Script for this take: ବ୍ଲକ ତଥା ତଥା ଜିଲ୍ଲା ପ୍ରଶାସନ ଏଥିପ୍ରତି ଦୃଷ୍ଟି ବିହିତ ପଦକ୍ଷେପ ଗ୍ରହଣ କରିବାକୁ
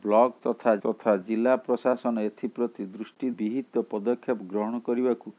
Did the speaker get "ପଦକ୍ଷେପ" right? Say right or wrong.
right